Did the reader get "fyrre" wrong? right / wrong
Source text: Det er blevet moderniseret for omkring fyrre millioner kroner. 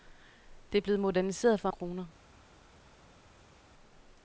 wrong